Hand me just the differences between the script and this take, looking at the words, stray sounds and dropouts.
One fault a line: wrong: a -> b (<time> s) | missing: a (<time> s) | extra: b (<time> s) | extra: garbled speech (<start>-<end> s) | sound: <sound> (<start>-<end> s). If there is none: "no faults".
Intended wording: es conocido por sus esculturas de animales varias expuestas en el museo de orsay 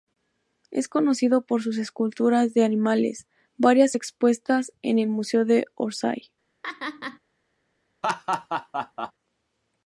sound: laugh (6.6-7.2 s)
sound: laugh (8.0-9.1 s)